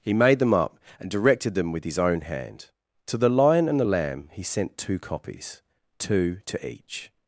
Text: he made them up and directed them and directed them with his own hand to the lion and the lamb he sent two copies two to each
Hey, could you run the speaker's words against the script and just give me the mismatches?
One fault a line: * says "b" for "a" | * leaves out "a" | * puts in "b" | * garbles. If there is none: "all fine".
* leaves out "and directed them"